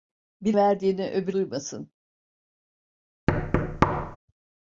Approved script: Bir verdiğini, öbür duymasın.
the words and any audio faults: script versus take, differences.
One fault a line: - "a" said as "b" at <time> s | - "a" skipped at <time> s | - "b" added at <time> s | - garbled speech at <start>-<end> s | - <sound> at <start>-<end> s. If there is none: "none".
- thud at 3.3-4.2 s